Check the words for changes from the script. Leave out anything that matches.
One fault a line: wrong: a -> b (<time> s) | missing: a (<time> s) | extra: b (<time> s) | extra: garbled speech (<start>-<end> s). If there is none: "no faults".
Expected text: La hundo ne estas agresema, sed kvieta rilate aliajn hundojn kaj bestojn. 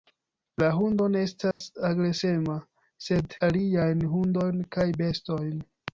missing: kvieta rilate (3.4 s)